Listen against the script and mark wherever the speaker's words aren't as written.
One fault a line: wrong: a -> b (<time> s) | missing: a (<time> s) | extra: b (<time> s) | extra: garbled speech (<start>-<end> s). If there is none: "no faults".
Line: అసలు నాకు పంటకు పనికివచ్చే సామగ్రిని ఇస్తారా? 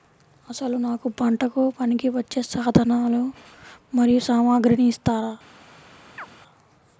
extra: సాధనాలు మరియు (2.4 s)